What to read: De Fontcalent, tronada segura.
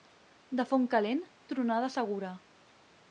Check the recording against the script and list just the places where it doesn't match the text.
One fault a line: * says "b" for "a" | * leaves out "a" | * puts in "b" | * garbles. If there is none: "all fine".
all fine